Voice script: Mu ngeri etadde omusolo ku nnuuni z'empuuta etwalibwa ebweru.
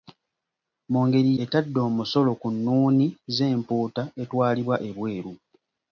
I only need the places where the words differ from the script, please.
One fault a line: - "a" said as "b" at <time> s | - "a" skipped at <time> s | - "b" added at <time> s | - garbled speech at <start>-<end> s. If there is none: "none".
none